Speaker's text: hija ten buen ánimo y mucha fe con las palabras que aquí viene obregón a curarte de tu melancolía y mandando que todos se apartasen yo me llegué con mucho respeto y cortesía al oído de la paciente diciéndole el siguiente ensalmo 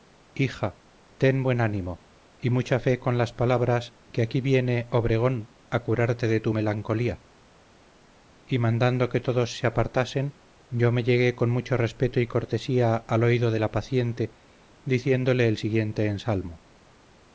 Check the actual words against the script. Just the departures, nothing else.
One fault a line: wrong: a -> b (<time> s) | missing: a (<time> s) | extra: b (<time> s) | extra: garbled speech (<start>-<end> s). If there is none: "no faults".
no faults